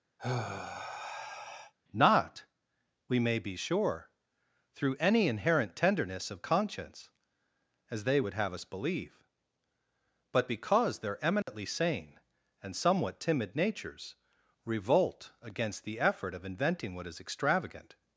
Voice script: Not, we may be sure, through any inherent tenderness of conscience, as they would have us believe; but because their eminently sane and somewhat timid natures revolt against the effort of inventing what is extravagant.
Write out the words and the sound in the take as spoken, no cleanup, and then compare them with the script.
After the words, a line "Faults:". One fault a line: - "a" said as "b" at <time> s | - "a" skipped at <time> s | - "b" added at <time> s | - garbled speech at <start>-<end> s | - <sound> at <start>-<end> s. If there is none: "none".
Not, we may be sure, through any inherent tenderness of conscience, as they would have us believe; but because their eminently sane and somewhat timid natures revolt against the effort of inventing what is extravagant.
Faults:
- sigh at 0.2-1.7 s
- dropout at 11.4-11.5 s